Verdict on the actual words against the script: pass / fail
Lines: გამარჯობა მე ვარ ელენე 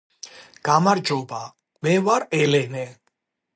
pass